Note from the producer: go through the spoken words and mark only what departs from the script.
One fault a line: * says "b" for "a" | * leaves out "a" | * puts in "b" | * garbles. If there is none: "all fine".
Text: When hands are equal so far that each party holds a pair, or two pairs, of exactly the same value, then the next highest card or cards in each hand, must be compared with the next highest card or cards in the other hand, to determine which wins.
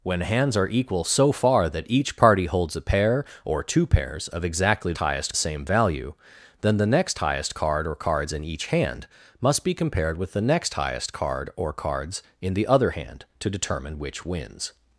* says "highest" for "the"